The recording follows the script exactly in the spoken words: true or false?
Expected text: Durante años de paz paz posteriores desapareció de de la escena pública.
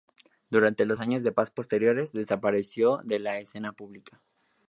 false